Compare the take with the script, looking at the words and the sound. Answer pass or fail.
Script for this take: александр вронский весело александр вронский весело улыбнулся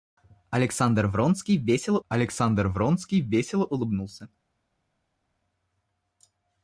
pass